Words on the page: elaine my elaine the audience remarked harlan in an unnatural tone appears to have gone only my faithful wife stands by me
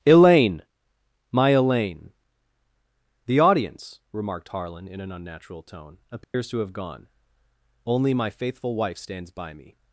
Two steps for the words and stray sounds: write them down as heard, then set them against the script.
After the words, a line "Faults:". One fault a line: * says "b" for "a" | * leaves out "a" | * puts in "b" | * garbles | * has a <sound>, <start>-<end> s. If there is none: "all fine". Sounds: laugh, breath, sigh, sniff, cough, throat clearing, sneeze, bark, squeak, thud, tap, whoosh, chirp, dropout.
elaine my elaine the audience remarked harlan in an unnatural tone appears to have gone only my faithful wife stands by me
Faults:
* has a dropout, 6.2-6.3 s